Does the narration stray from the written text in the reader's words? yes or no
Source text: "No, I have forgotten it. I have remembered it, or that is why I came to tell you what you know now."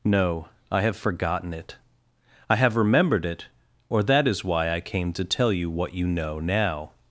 no